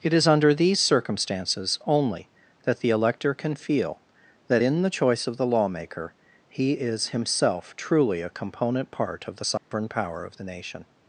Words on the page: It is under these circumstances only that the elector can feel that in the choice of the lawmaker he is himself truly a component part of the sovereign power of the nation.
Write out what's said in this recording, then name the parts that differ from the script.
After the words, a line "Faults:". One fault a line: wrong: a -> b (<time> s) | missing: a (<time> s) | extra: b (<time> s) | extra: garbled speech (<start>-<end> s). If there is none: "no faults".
It is under these circumstances only that the elector can feel that in the choice of the lawmaker he is himself truly a component part of the sovereign power of the nation.
Faults:
no faults